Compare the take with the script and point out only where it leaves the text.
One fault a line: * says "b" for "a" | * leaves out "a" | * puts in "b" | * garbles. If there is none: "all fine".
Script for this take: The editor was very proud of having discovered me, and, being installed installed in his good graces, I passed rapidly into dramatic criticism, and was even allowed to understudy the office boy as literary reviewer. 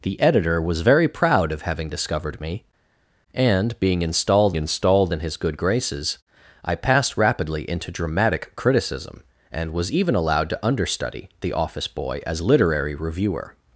all fine